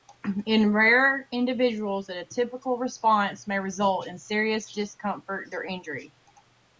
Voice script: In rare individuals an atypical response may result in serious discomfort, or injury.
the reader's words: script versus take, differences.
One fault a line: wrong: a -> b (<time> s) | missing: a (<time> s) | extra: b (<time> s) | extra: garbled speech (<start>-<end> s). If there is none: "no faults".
no faults